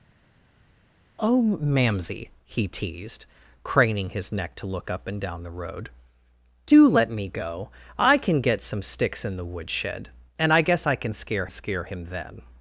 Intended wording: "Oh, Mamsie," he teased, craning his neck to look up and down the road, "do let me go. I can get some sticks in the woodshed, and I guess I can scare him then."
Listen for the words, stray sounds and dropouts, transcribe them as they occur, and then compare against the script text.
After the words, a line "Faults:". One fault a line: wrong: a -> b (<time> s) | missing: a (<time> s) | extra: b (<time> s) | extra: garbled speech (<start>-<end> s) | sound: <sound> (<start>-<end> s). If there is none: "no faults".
"Oh, Mamsie," he teased, craning his neck to look up and down the road, "do let me go. I can get some sticks in the woodshed, and I guess I can scare scare him then."
Faults:
extra: scare (11.5 s)